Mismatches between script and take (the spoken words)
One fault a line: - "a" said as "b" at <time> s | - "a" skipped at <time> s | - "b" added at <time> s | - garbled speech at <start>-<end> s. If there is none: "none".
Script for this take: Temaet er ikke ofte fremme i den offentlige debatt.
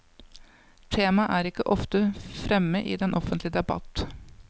none